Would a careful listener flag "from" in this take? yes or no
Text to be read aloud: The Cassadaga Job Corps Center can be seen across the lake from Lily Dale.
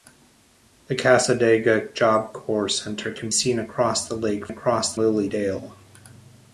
yes